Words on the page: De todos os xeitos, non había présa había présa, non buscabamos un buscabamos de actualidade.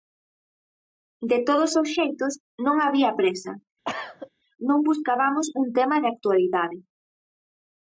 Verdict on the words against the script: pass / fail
fail